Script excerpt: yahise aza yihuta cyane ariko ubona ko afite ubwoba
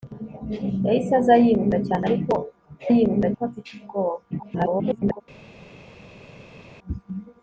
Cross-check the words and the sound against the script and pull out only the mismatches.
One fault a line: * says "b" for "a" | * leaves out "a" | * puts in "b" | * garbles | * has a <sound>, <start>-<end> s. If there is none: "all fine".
* says "yihuta" for "ubona"
* garbles